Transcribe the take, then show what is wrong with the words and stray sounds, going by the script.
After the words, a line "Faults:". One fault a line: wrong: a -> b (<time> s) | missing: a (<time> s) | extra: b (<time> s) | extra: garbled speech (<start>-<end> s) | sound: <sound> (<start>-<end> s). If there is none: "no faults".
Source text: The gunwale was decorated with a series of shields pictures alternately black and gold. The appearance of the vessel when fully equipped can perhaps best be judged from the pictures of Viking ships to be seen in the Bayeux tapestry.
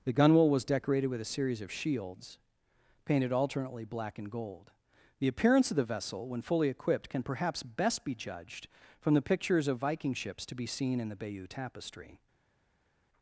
The gunwale was decorated with a series of shields painted alternately black and gold. The appearance of the vessel when fully equipped can perhaps best be judged from the pictures of Viking ships to be seen in the Bayeux tapestry.
Faults:
wrong: pictures -> painted (3.0 s)